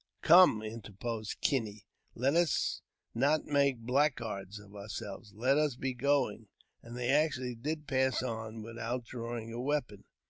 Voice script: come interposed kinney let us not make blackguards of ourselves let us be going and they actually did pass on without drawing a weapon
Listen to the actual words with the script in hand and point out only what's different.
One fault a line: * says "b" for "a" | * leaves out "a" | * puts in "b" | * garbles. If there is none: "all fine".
all fine